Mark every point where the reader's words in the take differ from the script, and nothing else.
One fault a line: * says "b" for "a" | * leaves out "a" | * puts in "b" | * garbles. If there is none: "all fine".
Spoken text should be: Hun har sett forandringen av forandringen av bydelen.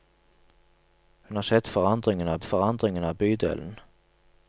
all fine